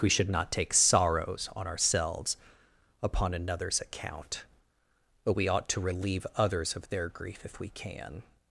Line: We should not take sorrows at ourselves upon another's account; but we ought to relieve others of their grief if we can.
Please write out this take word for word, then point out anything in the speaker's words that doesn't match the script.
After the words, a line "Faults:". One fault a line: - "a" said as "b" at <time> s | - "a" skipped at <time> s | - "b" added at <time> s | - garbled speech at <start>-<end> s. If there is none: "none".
We should not take sorrows on ourselves upon another's account; but we ought to relieve others of their grief if we can.
Faults:
- "at" said as "on" at 1.6 s